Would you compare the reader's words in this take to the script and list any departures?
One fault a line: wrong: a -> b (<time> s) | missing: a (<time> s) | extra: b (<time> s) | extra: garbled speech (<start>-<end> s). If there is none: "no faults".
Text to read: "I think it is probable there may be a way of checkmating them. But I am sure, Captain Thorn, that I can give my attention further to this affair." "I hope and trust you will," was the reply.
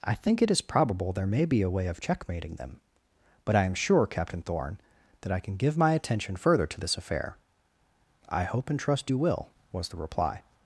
no faults